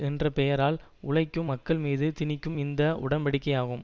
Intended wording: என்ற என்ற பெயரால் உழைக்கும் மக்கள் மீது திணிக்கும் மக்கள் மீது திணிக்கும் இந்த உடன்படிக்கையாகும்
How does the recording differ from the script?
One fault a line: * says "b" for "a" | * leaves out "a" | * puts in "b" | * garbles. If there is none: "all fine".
* leaves out "என்ற"
* leaves out "மக்கள் மீது திணிக்கும்"